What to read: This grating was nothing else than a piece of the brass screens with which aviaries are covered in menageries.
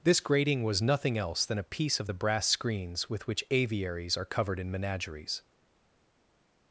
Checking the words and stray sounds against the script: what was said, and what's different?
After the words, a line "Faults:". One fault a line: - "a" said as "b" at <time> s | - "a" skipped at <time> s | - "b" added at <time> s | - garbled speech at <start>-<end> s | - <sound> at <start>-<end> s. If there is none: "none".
This grating was nothing else than a piece of the brass screens with which aviaries are covered in menageries.
Faults:
none